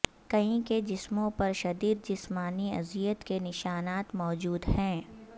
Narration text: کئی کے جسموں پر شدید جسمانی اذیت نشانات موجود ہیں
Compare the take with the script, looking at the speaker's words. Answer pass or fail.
fail